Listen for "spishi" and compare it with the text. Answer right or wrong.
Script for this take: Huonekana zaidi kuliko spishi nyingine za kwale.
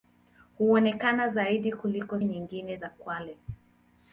wrong